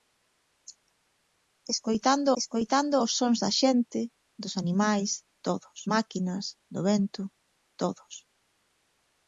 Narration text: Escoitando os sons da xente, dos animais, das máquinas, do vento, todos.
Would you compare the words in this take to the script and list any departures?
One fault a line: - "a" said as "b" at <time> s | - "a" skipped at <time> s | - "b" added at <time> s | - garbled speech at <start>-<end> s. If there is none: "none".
- "escoitando" added at 2.4 s
- "das" said as "todos" at 5.4 s